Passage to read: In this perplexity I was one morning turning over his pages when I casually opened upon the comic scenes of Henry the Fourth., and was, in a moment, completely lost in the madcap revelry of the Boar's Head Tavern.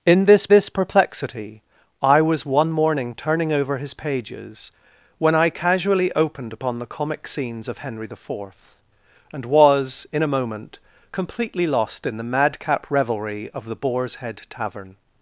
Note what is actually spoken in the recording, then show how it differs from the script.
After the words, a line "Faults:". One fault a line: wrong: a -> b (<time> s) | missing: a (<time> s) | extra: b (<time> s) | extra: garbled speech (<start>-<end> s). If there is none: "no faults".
In this this perplexity I was one morning turning over his pages when I casually opened upon the comic scenes of Henry the Fourth., and was, in a moment, completely lost in the madcap revelry of the Boar's Head Tavern.
Faults:
extra: this (0.5 s)